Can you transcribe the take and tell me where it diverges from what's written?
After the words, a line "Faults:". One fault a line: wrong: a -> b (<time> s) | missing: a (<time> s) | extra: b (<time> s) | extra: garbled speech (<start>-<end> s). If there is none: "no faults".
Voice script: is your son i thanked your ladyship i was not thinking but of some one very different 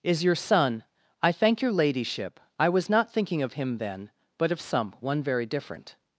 is your son i thank your ladyship i was not thinking of him then but of some one very different
Faults:
wrong: thanked -> thank (1.3 s)
extra: of him then (3.4 s)